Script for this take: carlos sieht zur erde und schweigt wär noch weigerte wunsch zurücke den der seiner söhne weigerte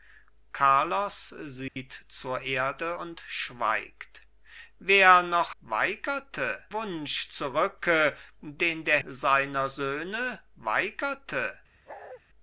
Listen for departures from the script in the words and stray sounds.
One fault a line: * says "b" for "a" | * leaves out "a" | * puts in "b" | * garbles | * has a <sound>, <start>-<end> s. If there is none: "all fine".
* has a dropout, 1.7-1.8 s
* has a bark, 11.9-12.2 s